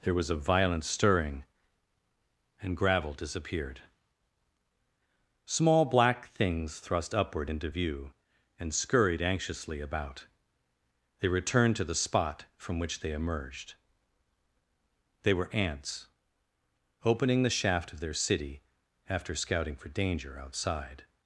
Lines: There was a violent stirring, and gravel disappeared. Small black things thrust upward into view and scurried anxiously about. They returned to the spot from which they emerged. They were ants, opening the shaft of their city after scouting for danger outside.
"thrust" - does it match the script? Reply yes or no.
yes